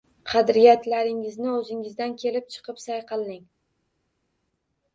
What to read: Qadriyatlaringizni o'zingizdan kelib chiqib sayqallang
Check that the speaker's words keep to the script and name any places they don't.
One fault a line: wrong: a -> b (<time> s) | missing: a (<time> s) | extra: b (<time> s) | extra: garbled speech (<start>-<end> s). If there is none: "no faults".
no faults